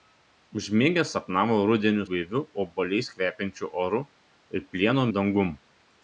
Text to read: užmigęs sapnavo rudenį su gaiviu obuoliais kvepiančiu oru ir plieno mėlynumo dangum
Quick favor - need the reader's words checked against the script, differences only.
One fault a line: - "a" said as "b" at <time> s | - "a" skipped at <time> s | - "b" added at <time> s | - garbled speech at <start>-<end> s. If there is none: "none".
- "su" skipped at 2.1 s
- "mėlynumo" skipped at 5.1 s